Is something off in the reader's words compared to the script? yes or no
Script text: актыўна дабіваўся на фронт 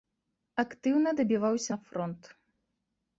no